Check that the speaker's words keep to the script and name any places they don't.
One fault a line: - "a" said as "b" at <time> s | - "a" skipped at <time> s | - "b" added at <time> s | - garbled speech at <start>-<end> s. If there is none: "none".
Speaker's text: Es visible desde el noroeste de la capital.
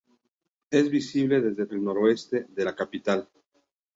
none